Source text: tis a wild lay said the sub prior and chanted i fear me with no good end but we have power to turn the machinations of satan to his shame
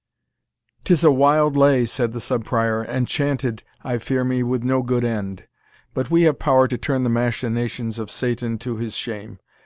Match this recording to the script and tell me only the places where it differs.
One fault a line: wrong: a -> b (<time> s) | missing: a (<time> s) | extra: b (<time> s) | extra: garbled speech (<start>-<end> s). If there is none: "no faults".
no faults